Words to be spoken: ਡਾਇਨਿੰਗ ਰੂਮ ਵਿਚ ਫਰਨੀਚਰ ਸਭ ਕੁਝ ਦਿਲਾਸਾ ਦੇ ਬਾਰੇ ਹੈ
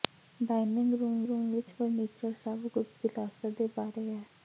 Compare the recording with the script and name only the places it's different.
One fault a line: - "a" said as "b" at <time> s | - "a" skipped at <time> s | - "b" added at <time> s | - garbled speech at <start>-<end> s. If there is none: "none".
- "ਰੂਮ" added at 1.2 s